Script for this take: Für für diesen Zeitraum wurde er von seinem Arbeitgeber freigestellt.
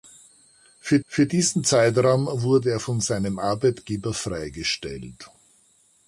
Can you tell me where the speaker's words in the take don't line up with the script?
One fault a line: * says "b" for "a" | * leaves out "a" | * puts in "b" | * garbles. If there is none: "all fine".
all fine